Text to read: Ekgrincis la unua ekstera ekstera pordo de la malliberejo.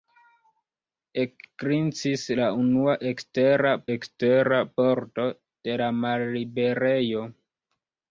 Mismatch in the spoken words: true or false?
false